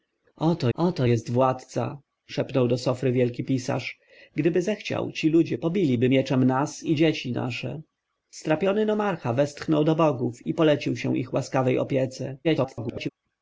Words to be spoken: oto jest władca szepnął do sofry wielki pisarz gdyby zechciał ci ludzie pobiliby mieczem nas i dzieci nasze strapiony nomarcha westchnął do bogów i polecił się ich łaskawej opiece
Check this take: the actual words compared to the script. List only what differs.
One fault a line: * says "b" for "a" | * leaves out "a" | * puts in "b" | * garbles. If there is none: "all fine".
* puts in "oto"
* garbles